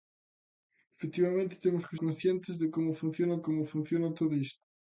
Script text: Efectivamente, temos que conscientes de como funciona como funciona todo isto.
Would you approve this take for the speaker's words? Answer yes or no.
yes